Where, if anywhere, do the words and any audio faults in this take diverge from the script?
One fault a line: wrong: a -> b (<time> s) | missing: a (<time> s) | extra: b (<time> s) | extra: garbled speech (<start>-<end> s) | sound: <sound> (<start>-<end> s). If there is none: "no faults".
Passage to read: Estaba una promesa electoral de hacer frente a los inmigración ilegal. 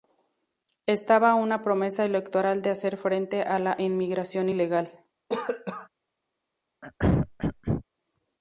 wrong: los -> la (3.6 s)
sound: cough (5.3-5.9 s)
sound: throat clearing (6.8-7.8 s)